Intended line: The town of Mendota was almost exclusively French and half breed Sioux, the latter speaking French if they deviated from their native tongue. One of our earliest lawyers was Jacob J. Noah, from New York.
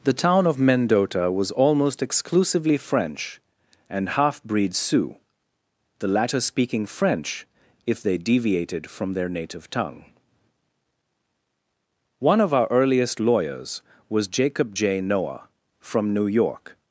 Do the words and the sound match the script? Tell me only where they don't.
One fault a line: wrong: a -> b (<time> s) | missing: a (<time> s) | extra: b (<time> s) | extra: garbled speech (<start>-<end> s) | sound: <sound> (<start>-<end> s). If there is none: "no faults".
no faults